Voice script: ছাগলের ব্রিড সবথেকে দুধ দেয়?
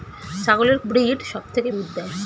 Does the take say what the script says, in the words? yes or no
yes